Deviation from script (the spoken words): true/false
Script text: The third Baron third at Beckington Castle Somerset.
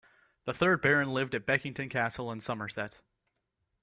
true